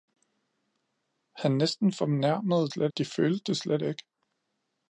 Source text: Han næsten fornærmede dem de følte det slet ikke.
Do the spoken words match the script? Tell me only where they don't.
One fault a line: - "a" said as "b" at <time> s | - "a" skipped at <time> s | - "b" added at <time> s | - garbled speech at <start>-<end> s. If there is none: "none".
- "dem" said as "slet" at 2.7 s